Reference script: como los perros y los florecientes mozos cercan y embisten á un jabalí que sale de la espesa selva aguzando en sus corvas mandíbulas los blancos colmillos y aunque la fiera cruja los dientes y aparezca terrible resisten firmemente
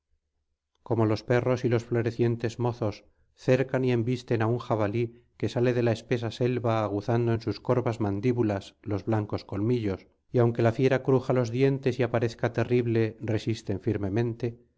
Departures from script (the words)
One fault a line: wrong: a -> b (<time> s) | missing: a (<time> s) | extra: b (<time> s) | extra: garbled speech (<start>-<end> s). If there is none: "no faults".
no faults